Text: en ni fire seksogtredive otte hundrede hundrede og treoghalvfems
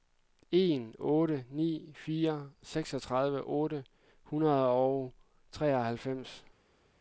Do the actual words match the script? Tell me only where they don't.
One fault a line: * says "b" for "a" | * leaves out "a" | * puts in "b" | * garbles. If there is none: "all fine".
* puts in "otte"
* leaves out "hundrede"